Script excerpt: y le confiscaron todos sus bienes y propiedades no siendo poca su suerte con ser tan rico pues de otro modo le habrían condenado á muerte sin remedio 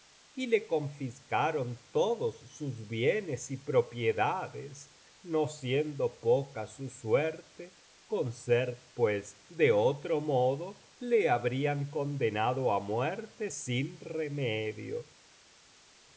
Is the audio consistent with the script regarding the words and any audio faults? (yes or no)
no